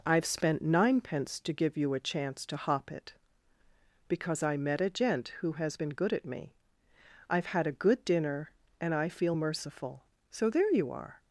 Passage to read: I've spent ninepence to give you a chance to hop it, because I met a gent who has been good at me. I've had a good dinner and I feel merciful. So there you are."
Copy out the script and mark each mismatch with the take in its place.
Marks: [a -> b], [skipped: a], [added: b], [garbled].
I've spent ninepence to give you a chance to hop it, because I met a gent who has been good at me. I've had a good dinner and I feel merciful. So there you are."